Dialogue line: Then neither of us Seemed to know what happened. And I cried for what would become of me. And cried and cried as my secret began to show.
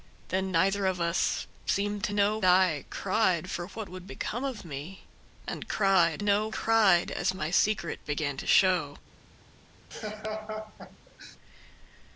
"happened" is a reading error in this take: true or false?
true